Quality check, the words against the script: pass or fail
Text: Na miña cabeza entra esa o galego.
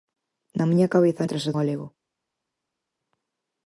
pass